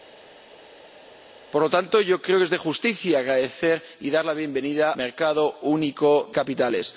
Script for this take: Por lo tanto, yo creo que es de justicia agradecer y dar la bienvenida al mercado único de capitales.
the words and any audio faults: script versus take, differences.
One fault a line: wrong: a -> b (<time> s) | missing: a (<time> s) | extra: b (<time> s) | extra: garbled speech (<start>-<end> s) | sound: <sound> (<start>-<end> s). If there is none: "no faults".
missing: al (4.9 s)
missing: de (6.3 s)